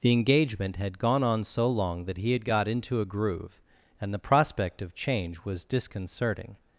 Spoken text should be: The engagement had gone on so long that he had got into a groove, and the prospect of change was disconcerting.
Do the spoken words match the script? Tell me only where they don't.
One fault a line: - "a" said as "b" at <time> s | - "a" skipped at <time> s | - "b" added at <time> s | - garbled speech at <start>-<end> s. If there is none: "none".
none